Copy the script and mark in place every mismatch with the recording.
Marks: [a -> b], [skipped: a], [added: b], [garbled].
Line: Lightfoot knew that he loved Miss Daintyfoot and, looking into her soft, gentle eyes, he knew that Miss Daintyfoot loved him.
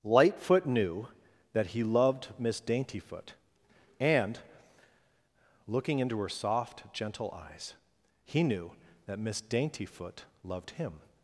Lightfoot knew that he loved Miss Daintyfoot and, looking into her soft, gentle eyes, he knew that Miss Daintyfoot loved him.